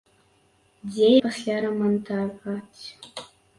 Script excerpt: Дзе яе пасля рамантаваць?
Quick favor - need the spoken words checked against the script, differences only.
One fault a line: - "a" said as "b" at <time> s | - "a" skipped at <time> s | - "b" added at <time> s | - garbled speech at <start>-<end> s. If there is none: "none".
- "яе" skipped at 1.1 s